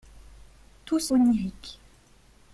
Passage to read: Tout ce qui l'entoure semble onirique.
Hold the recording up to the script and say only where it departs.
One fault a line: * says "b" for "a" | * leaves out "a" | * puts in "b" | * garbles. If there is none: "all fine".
* leaves out "qui l'entoure semble"